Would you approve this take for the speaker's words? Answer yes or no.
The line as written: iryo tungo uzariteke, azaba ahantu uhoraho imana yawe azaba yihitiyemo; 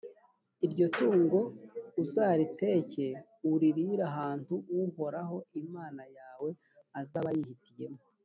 no